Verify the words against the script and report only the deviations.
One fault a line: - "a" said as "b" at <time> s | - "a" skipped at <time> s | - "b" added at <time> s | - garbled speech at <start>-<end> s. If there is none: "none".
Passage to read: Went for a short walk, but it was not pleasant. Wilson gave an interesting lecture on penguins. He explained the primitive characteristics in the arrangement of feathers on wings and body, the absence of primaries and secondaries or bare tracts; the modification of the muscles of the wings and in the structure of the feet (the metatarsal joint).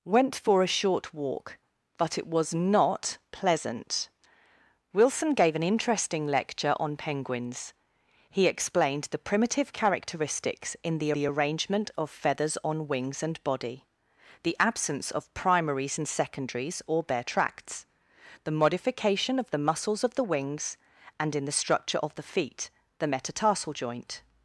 - "the" added at 11.1 s